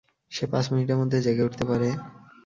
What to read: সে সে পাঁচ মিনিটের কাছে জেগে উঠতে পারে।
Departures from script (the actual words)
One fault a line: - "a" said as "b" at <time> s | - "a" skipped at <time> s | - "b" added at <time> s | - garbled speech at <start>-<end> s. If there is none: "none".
- "সে" skipped at 0.4 s
- "কাছে" said as "মধ্যে" at 1.0 s